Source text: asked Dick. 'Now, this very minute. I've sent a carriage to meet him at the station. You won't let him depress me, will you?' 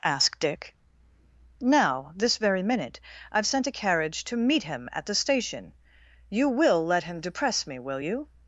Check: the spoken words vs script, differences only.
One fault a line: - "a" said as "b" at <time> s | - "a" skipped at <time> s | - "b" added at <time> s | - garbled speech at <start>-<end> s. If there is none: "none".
- "won't" said as "will" at 6.5 s